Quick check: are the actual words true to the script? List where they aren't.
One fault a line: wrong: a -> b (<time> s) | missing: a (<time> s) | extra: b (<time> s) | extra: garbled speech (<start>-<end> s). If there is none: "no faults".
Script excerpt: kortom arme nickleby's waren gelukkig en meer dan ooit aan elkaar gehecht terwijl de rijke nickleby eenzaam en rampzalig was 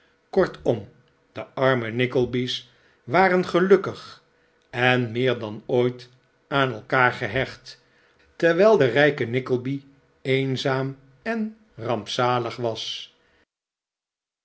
extra: de (1.3 s)